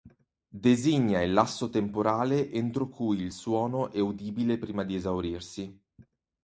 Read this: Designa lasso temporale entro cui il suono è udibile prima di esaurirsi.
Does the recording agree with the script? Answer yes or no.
no